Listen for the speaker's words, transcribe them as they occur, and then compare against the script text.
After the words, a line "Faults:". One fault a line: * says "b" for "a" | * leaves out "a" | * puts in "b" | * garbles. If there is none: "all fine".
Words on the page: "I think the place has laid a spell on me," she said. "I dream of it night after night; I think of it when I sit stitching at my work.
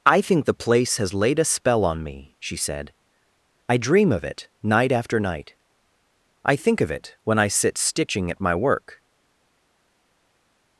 "I think the place has laid a spell on me," she said. "I dream of it night after night; I think of it when I sit stitching at my work.
Faults:
all fine